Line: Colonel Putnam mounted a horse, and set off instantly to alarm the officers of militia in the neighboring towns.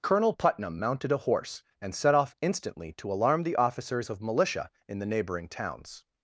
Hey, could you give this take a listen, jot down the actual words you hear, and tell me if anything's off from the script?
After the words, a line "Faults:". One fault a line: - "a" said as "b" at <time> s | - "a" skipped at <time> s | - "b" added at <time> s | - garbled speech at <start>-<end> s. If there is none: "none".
Colonel Putnam mounted a horse, and set off instantly to alarm the officers of militia in the neighboring towns.
Faults:
none